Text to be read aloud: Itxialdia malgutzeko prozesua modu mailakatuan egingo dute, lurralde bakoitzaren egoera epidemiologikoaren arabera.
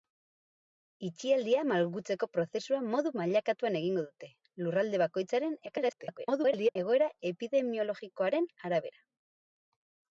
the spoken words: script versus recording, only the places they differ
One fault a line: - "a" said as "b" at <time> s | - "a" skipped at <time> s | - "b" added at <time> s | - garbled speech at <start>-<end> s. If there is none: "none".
- garbled speech at 5.7-6.8 s